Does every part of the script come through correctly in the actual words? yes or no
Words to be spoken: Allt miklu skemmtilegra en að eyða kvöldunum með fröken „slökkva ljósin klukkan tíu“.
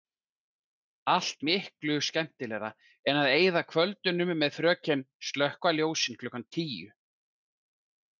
yes